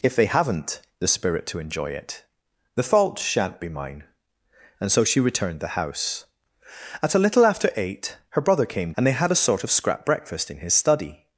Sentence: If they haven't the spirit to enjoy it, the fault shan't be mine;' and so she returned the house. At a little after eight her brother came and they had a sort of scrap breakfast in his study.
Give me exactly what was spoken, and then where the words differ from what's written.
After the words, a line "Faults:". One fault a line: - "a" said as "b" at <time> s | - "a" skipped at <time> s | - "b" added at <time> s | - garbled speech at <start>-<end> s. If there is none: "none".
If they haven't the spirit to enjoy it, the fault shan't be mine;' and so she returned the house. At a little after eight her brother came and they had a sort of scrap breakfast in his study.
Faults:
none